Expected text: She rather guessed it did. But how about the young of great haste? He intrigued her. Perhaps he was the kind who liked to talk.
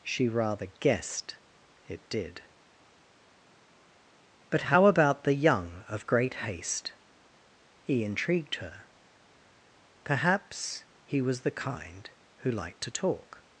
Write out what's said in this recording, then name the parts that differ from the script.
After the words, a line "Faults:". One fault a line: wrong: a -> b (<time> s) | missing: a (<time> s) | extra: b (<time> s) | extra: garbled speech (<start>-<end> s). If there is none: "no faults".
She rather guessed it did. But how about the young of great haste? He intrigued her. Perhaps he was the kind who liked to talk.
Faults:
no faults